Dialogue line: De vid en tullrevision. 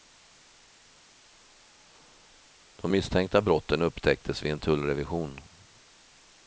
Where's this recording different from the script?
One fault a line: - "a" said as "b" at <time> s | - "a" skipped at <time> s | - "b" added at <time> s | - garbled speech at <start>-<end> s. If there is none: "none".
- "misstänkta brotten upptäcktes" added at 2.9 s